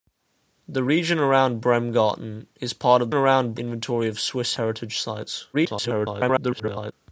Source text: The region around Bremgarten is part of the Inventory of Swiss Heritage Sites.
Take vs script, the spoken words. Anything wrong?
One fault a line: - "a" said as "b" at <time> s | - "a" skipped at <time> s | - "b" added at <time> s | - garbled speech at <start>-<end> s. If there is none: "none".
- "the" said as "around" at 3.1 s
- garbled speech at 5.5-6.9 s